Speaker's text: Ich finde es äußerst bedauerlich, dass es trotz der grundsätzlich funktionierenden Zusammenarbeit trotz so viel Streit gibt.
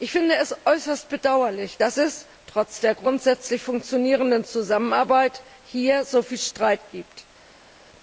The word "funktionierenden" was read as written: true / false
true